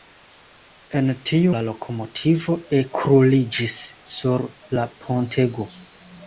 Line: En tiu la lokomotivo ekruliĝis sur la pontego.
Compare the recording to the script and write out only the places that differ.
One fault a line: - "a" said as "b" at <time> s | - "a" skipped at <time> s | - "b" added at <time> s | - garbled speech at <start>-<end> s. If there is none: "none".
none